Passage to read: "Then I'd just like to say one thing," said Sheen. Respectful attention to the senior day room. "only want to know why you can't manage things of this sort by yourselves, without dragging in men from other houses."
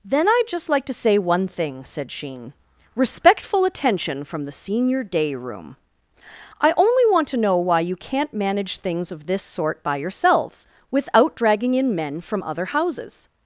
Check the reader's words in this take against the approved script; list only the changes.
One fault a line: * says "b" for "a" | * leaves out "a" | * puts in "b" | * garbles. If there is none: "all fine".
* says "from" for "to"
* puts in "I"